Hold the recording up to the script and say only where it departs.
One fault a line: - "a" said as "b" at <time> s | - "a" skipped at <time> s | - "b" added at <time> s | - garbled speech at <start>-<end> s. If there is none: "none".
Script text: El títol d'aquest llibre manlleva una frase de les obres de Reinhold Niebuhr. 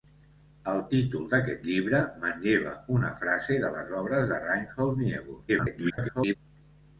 - garbled speech at 5.5-6.4 s